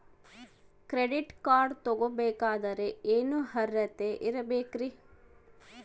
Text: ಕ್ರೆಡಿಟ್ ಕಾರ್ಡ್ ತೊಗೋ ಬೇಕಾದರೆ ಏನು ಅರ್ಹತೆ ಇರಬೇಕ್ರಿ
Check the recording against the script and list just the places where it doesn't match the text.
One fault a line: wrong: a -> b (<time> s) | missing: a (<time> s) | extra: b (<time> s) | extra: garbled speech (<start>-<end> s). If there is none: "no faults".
no faults